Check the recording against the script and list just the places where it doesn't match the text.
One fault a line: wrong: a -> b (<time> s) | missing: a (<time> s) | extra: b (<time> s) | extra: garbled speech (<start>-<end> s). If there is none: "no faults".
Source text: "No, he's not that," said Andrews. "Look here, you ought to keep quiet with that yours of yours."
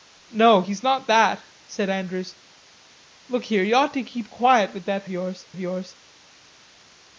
no faults